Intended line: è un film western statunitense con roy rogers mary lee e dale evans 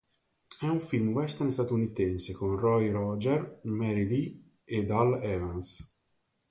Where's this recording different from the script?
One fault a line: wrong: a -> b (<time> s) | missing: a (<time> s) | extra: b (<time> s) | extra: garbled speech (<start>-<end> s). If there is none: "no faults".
no faults